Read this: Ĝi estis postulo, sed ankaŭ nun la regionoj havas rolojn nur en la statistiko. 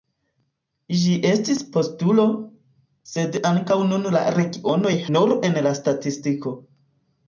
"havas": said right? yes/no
no